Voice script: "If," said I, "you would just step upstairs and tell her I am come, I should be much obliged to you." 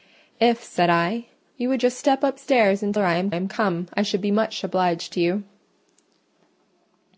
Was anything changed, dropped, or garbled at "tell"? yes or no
yes